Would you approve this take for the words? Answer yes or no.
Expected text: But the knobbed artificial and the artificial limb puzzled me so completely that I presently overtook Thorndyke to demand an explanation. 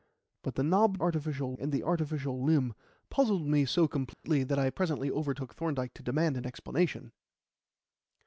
yes